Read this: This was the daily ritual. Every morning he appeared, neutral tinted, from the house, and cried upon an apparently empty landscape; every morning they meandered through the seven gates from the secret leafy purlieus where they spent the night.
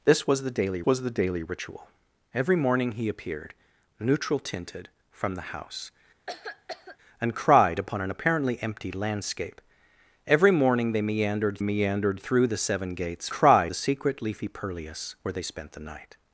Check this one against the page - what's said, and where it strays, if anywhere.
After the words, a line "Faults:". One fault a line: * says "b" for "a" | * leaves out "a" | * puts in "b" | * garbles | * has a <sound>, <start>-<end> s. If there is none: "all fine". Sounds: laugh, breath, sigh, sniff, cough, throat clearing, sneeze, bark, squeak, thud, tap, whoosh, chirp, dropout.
This was the daily was the daily ritual. Every morning he appeared, neutral tinted, from the house, and cried upon an apparently empty landscape; every morning they meandered meandered through the seven gates cried the secret leafy purlieus where they spent the night.
Faults:
* puts in "was the daily"
* has a cough, 6.3-7.0 s
* puts in "meandered"
* says "cried" for "from"